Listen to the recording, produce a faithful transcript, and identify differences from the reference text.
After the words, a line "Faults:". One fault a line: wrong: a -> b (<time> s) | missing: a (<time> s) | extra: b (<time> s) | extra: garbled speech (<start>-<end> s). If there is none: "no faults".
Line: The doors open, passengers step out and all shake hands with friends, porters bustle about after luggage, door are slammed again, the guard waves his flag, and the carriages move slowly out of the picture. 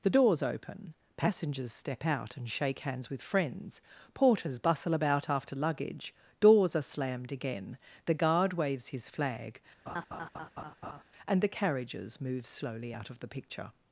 The doors open, passengers step out and shake hands with friends, porters bustle about after luggage, doors are slammed again, the guard waves his flag, and the carriages move slowly out of the picture.
Faults:
missing: all (2.5 s)
wrong: door -> doors (6.4 s)